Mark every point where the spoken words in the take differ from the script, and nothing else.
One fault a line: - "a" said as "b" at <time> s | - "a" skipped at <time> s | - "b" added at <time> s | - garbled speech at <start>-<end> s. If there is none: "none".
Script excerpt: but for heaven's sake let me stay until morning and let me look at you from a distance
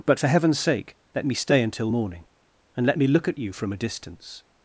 none